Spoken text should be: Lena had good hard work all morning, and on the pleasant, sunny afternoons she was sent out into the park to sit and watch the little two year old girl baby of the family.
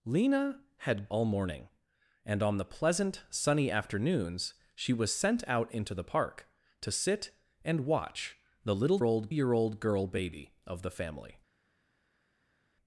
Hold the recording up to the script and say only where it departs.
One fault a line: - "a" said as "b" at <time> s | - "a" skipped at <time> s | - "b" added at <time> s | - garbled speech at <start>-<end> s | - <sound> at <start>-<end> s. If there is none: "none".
- "good hard work" skipped at 1.1 s
- "two" said as "old" at 9.0 s